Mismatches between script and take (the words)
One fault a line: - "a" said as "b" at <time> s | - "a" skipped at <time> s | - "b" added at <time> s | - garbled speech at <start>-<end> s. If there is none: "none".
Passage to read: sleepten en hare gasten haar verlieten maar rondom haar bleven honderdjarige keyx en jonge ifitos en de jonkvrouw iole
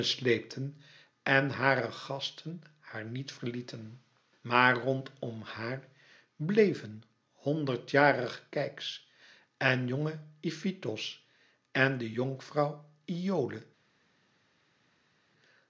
- "niet" added at 3.0 s